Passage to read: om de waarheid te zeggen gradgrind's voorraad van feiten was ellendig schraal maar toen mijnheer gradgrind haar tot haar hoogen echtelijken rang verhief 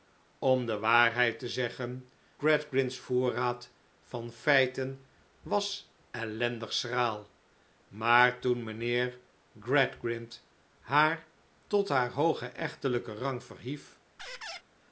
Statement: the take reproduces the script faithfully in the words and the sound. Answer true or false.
false